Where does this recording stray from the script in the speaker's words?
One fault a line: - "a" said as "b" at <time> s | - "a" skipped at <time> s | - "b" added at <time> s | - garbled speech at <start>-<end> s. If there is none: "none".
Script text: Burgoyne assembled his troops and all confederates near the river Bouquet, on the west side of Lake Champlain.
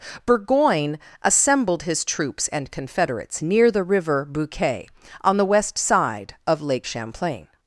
- "all" skipped at 2.7 s